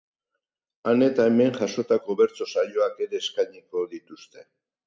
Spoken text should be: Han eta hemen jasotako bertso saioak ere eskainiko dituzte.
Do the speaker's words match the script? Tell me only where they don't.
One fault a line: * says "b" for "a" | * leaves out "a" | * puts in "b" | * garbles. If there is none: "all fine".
all fine